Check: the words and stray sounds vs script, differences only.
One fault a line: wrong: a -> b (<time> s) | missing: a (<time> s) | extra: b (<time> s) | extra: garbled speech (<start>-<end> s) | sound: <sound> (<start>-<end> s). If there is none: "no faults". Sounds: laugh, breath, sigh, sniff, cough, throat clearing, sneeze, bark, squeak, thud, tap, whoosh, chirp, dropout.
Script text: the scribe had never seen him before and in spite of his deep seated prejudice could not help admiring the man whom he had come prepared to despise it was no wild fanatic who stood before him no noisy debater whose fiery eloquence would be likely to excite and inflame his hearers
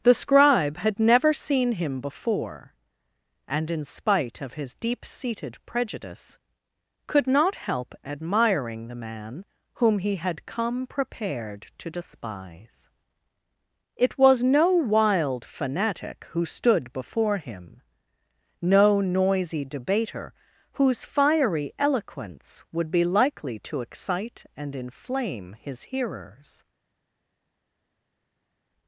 no faults